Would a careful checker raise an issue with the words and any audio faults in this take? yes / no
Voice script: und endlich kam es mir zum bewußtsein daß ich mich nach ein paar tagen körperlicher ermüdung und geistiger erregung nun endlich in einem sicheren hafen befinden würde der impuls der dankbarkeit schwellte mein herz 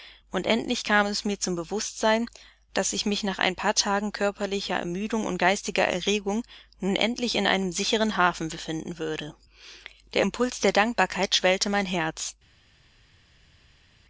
no